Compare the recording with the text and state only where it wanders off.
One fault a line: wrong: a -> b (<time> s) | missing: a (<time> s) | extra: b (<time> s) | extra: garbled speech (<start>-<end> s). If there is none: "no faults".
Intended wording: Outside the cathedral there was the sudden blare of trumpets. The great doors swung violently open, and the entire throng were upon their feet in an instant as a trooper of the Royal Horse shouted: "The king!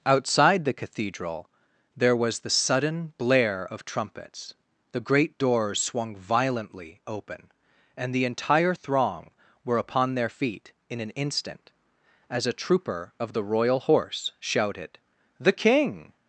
no faults